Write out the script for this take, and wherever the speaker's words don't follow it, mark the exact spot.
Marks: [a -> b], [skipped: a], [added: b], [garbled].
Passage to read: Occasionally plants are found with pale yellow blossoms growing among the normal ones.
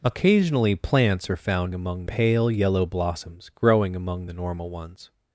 Occasionally plants are found [with -> among] pale yellow blossoms growing among the normal ones.